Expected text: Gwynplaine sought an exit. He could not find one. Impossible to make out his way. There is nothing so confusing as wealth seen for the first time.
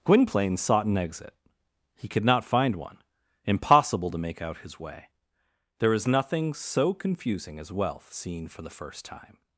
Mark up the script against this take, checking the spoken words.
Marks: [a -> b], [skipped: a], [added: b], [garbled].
Gwynplaine sought an exit. He could not find one. Impossible to make out his way. There is nothing so confusing as wealth seen for the first time.